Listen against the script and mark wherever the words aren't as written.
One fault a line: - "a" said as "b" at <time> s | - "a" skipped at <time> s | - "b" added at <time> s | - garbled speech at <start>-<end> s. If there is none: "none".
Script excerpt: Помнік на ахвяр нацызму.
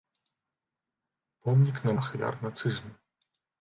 none